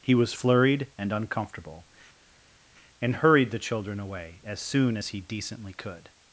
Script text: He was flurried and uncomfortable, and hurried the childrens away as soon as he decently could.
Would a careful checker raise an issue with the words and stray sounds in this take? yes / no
yes